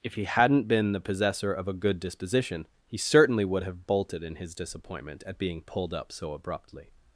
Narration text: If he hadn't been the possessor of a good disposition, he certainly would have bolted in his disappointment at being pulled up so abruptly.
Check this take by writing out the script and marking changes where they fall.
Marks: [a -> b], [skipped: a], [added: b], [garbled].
If he hadn't been the possessor of a good disposition, he certainly would have bolted in his disappointment at being pulled up so abruptly.